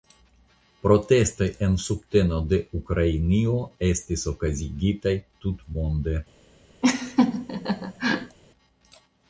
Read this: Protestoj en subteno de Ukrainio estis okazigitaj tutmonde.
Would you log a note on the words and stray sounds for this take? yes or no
yes